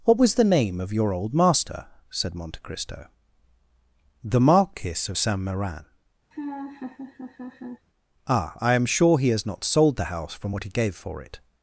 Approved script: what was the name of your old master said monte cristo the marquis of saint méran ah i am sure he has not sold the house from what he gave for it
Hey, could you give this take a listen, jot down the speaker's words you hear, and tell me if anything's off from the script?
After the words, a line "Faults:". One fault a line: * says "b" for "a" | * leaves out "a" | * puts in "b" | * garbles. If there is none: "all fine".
what was the name of your old master said monte cristo the marquis of saint méran ah i am sure he has not sold the house from what he gave for it
Faults:
all fine